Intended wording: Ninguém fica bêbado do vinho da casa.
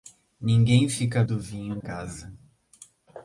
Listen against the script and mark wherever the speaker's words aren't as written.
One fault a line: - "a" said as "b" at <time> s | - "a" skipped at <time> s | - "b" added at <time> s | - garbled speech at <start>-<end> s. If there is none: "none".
- "bêbado" skipped at 1.2 s
- "da" skipped at 1.8 s